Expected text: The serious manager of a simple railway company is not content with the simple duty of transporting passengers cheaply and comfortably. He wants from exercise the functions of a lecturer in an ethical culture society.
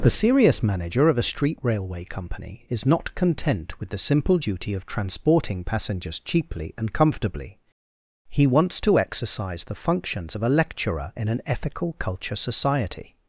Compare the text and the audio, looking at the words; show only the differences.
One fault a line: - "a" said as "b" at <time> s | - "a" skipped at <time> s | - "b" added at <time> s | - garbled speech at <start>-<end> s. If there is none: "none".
- "simple" said as "street" at 1.2 s
- "from" said as "to" at 8.8 s